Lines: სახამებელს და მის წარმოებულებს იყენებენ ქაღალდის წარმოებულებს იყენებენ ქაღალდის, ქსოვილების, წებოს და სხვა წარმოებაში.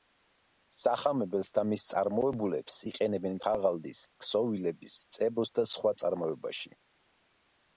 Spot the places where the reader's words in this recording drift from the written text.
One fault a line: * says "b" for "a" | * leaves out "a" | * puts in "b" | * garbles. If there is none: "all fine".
* leaves out "წარმოებულებს იყენებენ ქაღალდის"